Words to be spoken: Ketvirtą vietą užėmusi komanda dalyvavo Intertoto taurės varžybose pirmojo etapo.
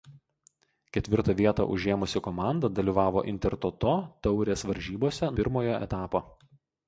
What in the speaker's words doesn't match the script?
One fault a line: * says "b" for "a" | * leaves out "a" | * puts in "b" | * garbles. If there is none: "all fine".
all fine